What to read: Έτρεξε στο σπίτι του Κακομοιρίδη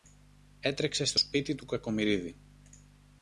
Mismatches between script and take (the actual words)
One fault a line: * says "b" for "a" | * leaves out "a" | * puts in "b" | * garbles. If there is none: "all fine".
all fine